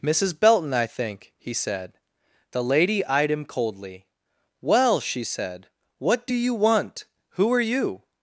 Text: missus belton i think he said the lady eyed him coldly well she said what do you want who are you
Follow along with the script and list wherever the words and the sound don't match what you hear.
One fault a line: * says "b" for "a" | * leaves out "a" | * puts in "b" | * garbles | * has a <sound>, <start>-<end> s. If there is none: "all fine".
all fine